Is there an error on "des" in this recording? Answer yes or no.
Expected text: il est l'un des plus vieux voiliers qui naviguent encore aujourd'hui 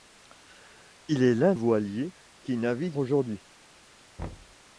yes